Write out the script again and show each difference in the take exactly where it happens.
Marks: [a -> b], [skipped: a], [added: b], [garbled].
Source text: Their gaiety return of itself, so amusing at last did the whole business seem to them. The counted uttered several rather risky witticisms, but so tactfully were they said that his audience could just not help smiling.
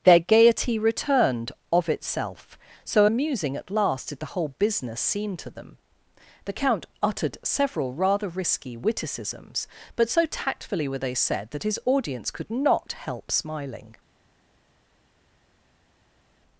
Their gaiety [return -> returned] of itself, so amusing at last did the whole business seem to them. The [counted -> count] uttered several rather risky witticisms, but so tactfully were they said that his audience could [skipped: just] not help smiling.